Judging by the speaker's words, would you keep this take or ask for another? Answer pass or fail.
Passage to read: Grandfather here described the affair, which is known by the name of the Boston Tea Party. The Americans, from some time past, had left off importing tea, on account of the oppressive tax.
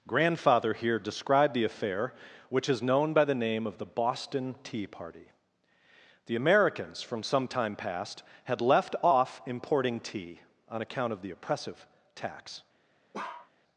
pass